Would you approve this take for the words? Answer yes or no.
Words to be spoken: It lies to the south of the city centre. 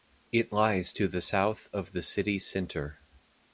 yes